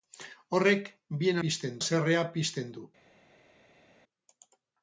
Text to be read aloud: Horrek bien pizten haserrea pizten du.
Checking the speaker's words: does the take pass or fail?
pass